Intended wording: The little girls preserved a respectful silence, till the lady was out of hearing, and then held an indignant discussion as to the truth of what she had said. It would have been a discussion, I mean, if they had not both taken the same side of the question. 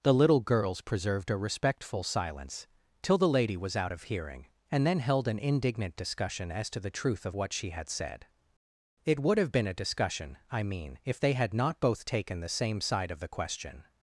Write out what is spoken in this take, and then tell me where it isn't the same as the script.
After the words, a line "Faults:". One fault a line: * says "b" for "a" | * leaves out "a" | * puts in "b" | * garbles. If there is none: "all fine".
The little girls preserved a respectful silence, till the lady was out of hearing, and then held an indignant discussion as to the truth of what she had said. It would have been a discussion, I mean, if they had not both taken the same side of the question.
Faults:
all fine